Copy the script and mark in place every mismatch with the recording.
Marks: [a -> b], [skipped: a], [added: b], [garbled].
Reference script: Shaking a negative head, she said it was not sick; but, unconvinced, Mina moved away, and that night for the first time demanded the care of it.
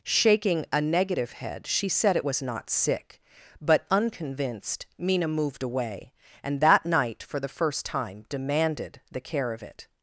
Shaking a negative head, she said it was not sick; but, unconvinced, Mina moved away, and that night for the first time demanded the care of it.